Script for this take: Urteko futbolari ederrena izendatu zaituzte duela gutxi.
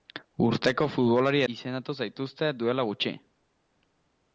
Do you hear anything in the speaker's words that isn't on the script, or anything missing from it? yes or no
yes